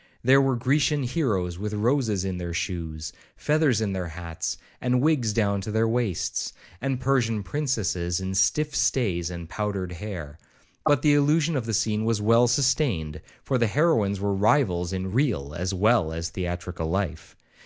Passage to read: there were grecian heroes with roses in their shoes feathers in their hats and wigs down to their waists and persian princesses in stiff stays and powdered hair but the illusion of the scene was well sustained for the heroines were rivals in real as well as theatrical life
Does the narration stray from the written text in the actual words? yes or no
no